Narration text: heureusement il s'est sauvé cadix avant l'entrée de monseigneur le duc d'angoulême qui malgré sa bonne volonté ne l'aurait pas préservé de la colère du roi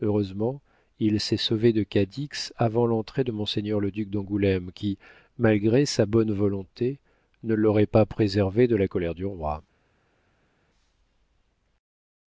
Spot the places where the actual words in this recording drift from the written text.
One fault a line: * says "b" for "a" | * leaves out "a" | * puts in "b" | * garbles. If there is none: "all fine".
* puts in "de"